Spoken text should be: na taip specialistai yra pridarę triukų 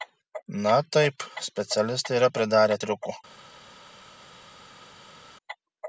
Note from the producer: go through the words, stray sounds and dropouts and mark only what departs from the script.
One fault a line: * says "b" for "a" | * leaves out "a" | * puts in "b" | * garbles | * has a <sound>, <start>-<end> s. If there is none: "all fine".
all fine